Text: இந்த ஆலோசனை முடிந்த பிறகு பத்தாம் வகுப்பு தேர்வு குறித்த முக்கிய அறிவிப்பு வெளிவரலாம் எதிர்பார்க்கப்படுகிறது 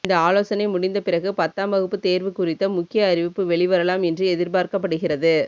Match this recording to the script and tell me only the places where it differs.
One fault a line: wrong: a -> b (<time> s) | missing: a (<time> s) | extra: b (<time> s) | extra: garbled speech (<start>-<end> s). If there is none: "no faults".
extra: என்று (4.0 s)